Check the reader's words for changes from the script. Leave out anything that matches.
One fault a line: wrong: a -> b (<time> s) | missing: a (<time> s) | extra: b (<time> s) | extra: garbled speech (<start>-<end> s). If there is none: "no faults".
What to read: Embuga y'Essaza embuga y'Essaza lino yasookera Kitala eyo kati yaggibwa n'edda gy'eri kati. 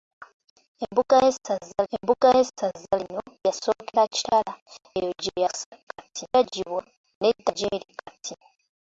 no faults